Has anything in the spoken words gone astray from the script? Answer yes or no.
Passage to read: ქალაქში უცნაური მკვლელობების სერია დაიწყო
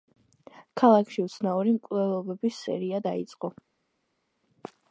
no